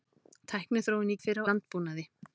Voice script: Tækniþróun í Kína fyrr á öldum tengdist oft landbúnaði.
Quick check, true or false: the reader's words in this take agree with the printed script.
false